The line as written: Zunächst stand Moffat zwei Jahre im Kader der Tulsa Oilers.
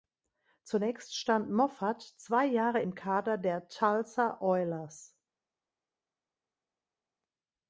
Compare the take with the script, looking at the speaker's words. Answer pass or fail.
pass